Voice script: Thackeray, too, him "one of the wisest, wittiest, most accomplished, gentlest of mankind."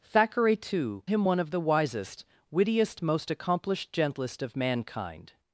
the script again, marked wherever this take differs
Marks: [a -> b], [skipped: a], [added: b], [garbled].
Thackeray, too, him "one of the wisest, wittiest, most accomplished, gentlest of mankind."